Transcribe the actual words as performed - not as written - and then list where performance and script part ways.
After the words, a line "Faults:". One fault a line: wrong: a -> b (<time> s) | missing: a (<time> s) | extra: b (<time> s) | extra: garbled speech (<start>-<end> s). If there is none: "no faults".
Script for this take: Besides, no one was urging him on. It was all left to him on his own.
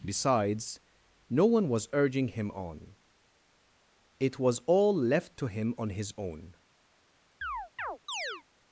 Besides, no one was urging him on. It was all left to him on his own.
Faults:
no faults